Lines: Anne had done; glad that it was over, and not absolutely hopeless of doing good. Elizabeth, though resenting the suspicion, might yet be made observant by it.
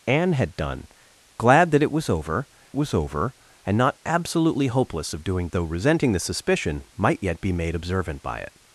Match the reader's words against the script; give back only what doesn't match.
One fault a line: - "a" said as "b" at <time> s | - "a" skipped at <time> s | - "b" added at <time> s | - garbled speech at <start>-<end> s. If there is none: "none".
- "was over" added at 2.7 s
- "good Elizabeth" skipped at 5.5 s